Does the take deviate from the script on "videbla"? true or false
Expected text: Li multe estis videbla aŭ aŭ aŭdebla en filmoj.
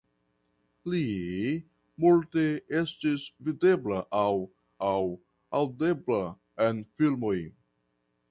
false